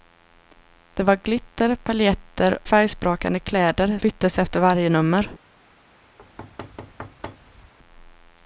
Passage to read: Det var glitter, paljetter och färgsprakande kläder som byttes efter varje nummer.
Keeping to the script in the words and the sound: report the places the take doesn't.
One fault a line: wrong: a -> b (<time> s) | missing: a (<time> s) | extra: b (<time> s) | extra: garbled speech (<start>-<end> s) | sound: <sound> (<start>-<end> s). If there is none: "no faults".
missing: och (2.6 s)
missing: som (4.0 s)
sound: thud (6.2-7.7 s)